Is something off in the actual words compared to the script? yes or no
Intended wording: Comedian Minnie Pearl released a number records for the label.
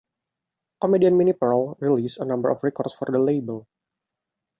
yes